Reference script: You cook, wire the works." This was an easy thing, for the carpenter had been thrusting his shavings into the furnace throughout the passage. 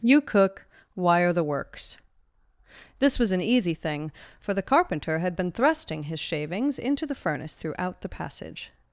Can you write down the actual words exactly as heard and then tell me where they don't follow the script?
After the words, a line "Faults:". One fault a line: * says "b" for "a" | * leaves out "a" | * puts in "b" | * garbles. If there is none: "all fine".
You cook, wire the works." This was an easy thing, for the carpenter had been thrusting his shavings into the furnace throughout the passage.
Faults:
all fine